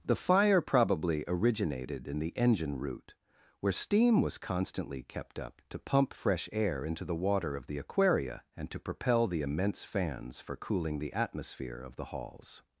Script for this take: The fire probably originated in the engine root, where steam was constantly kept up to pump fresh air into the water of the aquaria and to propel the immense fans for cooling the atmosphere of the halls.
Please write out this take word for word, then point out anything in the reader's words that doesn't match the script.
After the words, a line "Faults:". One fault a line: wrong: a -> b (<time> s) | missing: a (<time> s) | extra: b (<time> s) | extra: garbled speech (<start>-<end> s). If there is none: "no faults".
The fire probably originated in the engine root, where steam was constantly kept up to pump fresh air into the water of the aquaria and to propel the immense fans for cooling the atmosphere of the halls.
Faults:
no faults